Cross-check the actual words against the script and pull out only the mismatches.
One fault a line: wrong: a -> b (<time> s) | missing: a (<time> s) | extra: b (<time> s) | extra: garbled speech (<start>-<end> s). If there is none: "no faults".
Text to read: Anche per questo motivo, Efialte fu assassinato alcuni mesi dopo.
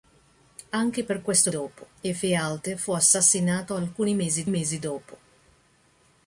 wrong: motivo -> dopo (1.5 s)
extra: mesi (4.5 s)